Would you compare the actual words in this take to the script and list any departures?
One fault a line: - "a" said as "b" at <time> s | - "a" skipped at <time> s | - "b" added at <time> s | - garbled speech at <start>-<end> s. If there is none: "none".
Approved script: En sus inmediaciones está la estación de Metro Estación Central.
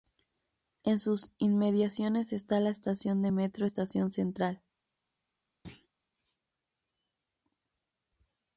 none